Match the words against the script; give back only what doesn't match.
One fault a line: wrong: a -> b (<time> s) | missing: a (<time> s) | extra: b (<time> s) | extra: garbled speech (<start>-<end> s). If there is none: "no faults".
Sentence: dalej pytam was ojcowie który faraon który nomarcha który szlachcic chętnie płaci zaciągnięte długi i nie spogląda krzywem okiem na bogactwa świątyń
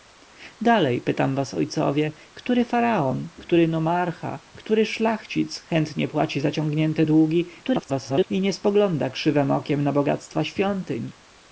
extra: garbled speech (7.6-8.3 s)